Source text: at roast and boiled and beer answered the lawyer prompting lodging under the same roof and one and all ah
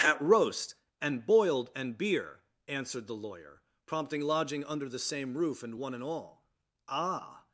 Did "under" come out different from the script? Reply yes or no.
no